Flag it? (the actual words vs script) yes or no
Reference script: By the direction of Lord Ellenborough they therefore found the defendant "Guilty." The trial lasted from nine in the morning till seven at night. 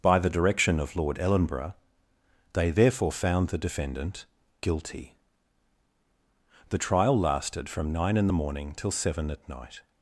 no